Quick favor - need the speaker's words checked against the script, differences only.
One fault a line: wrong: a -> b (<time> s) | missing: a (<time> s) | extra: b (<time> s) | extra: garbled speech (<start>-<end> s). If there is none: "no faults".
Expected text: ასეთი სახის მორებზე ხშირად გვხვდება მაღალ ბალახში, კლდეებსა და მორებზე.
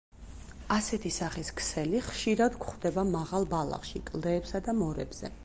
wrong: მორებზე -> ქსელი (1.6 s)